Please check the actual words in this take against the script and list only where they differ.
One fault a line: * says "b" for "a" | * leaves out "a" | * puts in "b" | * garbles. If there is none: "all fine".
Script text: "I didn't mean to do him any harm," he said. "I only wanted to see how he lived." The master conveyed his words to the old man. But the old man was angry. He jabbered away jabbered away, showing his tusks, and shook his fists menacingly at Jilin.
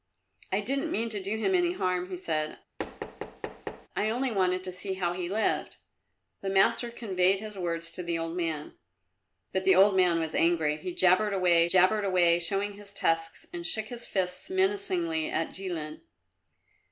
all fine